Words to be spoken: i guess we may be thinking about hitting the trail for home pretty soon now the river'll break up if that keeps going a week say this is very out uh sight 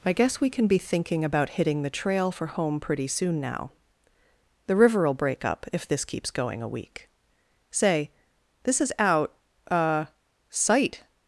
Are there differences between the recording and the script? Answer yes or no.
yes